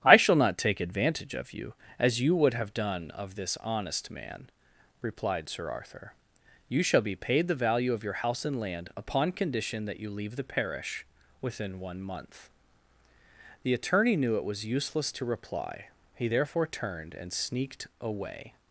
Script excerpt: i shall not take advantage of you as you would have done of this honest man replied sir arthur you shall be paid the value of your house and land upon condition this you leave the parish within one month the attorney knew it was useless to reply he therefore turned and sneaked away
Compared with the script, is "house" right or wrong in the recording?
right